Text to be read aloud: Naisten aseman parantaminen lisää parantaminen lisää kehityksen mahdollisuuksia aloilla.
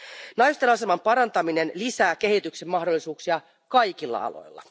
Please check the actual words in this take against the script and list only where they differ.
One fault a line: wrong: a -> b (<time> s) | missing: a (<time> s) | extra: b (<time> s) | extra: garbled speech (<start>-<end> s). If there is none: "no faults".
missing: parantaminen lisää (2.1 s)
extra: kaikilla (3.7 s)